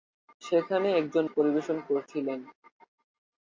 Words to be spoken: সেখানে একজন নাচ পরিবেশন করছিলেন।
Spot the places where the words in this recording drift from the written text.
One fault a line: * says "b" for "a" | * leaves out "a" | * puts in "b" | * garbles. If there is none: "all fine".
* leaves out "নাচ"